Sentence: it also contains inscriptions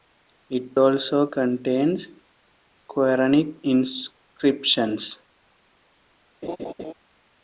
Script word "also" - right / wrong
right